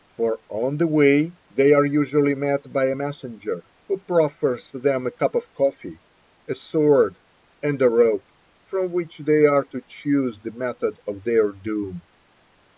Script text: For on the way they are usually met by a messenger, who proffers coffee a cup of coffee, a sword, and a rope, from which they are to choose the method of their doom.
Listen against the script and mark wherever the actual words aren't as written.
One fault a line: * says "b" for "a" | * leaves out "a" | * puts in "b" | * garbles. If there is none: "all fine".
* says "them" for "coffee"